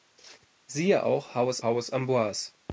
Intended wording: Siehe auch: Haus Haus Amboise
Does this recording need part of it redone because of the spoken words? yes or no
no